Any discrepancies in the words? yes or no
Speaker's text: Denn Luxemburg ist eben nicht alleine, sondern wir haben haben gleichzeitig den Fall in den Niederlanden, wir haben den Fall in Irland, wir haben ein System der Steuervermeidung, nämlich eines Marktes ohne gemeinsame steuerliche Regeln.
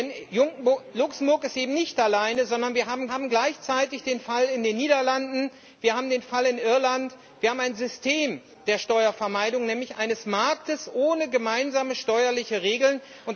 no